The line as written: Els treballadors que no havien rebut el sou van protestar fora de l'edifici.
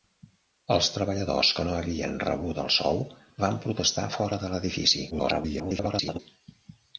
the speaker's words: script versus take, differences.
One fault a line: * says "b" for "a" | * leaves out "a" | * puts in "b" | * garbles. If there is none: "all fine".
* garbles